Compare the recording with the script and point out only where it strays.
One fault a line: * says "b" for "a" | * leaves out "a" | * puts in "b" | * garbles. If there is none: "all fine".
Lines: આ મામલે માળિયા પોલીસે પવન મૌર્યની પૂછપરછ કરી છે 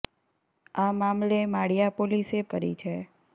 * leaves out "પવન મૌર્યની પૂછપરછ"